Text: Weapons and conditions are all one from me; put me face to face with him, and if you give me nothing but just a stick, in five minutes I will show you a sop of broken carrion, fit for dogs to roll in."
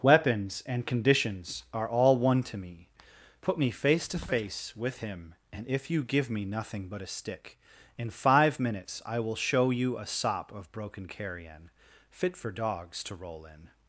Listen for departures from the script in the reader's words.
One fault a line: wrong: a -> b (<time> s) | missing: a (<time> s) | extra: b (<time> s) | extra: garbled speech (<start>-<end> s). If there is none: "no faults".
wrong: from -> to (2.4 s)
missing: just (7.0 s)